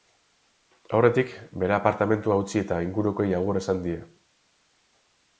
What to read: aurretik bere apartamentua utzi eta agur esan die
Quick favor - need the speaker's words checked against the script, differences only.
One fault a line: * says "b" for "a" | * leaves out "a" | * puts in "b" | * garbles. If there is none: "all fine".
* puts in "ingurukoei"